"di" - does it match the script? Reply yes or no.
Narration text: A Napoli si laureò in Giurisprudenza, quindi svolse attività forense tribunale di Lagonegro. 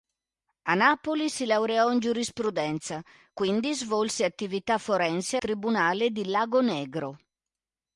yes